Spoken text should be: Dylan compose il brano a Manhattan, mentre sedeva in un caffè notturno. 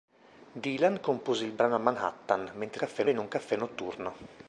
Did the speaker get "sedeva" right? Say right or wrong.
wrong